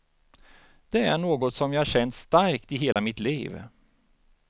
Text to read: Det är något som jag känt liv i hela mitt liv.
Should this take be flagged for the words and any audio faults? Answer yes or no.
yes